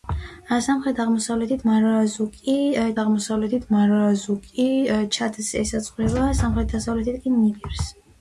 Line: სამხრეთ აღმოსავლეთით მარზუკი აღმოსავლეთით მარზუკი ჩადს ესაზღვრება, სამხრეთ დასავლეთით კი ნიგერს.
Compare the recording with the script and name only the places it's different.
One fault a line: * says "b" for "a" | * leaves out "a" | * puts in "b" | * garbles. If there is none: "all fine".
all fine